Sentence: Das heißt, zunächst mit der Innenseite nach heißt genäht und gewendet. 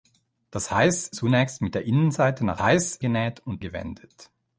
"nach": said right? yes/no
yes